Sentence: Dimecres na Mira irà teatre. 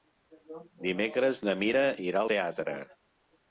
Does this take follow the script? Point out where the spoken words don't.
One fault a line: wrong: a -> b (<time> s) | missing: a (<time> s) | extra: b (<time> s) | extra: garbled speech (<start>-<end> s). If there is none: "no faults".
no faults